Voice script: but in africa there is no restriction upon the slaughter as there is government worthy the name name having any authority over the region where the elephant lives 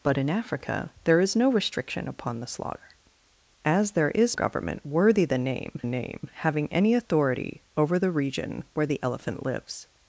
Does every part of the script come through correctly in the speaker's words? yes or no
yes